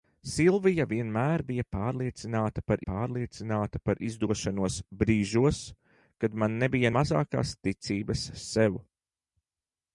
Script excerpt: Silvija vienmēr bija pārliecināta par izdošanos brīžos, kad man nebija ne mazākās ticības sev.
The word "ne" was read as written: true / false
false